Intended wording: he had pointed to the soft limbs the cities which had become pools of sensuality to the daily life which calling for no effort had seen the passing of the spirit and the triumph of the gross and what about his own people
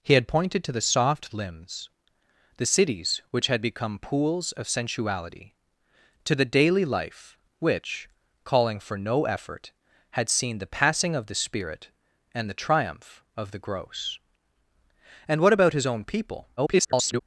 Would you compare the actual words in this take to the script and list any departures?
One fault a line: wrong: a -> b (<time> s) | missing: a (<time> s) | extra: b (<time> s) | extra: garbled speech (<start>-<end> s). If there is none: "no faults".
extra: garbled speech (16.6-17.2 s)